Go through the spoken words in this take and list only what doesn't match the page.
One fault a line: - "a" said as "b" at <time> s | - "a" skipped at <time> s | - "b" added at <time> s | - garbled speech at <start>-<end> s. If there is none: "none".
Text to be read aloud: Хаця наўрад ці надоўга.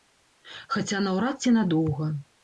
none